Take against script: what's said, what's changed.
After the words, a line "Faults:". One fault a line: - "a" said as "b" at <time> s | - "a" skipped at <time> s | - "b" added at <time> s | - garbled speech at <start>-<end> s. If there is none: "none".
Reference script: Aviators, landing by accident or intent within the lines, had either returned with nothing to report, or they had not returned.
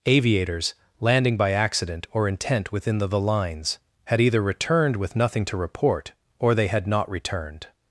Aviators, landing by accident or intent within the the lines, had either returned with nothing to report, or they had not returned.
Faults:
- "the" added at 3.0 s